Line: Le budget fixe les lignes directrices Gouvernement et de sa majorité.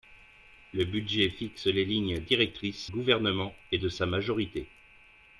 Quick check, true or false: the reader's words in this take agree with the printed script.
true